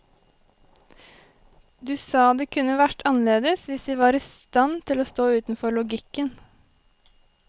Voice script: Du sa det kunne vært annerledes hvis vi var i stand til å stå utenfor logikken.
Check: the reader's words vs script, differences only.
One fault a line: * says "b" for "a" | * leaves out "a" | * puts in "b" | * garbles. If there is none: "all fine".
all fine